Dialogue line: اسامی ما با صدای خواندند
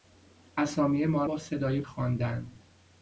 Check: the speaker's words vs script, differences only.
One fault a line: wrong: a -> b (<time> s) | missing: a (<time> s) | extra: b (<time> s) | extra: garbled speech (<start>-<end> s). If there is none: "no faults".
no faults